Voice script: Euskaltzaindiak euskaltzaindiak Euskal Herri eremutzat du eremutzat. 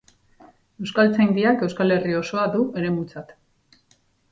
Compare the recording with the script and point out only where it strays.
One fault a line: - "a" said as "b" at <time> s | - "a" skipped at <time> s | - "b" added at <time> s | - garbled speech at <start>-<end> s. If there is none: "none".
- "euskaltzaindiak" skipped at 1.6 s
- "eremutzat" said as "osoa" at 2.2 s